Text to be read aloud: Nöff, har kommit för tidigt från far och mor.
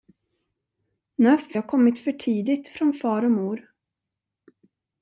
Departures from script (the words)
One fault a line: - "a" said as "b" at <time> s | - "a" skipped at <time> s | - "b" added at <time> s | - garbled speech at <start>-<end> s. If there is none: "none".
none